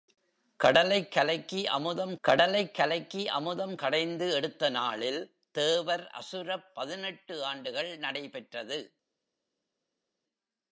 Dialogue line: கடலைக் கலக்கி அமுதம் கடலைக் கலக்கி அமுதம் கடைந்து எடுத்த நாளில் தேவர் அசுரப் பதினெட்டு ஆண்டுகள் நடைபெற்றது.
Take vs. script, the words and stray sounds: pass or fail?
pass